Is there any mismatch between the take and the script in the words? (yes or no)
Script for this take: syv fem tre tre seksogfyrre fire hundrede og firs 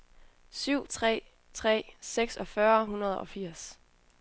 yes